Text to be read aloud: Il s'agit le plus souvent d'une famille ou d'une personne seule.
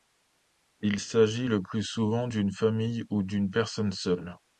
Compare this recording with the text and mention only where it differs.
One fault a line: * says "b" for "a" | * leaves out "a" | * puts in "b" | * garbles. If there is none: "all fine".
all fine